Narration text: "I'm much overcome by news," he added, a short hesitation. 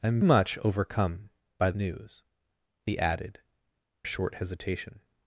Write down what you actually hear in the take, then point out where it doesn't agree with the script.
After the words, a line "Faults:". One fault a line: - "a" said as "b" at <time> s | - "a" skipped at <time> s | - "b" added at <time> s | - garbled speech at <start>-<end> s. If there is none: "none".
"I'm much overcome by news," he added, a short hesitation.
Faults:
none